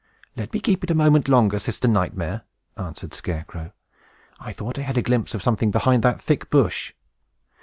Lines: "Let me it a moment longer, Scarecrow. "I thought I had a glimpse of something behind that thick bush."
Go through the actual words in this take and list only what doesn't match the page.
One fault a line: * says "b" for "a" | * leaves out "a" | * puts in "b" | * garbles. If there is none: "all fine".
* puts in "keep"
* puts in "Sister Nightmare answered"